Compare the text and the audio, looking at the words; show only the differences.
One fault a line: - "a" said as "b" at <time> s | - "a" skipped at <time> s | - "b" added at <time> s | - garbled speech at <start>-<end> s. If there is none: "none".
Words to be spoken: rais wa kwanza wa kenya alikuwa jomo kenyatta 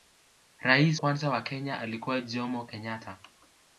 - "wa" skipped at 1.0 s